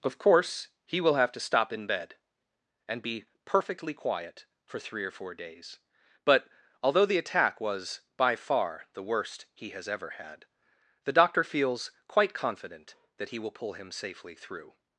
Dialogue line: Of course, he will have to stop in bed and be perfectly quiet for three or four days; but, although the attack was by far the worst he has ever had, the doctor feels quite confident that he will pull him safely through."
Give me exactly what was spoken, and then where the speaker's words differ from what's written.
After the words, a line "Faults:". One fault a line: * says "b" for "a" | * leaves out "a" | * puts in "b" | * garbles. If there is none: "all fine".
Of course, he will have to stop in bed and be perfectly quiet for three or four days; but, although the attack was by far the worst he has ever had, the doctor feels quite confident that he will pull him safely through."
Faults:
all fine